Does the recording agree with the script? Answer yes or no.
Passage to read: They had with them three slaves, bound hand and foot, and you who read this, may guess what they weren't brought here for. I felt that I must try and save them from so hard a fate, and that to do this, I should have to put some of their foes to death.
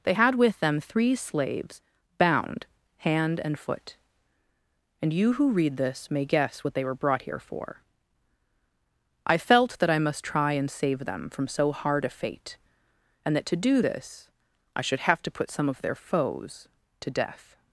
no